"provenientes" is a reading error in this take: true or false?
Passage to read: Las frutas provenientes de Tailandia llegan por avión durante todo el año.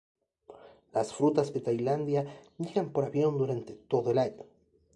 true